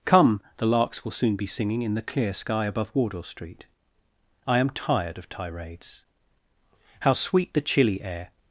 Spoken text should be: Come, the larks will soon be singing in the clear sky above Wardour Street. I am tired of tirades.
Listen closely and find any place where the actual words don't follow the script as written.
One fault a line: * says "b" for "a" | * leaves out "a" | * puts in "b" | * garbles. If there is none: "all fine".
* puts in "How sweet the chilly air"